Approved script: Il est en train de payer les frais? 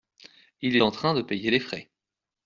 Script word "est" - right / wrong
wrong